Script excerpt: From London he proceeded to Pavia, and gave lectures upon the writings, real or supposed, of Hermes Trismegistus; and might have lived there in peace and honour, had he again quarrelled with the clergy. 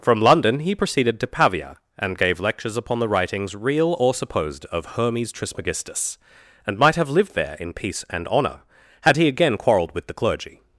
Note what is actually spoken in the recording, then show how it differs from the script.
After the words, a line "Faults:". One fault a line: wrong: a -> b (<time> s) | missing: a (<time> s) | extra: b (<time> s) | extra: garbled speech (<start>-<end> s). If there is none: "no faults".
From London he proceeded to Pavia, and gave lectures upon the writings, real or supposed, of Hermes Trismegistus; and might have lived there in peace and honour, had he again quarrelled with the clergy.
Faults:
no faults